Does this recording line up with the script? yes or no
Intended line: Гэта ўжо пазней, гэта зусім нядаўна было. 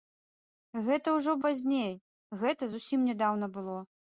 yes